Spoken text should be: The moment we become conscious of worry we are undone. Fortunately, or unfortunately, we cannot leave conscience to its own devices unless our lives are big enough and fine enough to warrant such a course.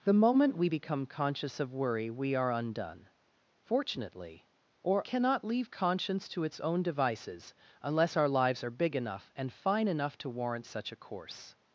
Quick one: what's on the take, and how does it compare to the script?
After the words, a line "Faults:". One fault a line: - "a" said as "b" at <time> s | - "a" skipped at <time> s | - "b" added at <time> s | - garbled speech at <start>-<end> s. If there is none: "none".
The moment we become conscious of worry we are undone. Fortunately, or cannot leave conscience to its own devices unless our lives are big enough and fine enough to warrant such a course.
Faults:
- "unfortunately we" skipped at 5.0 s